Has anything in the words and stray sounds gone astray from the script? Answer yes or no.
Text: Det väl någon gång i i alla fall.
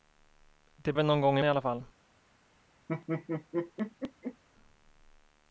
yes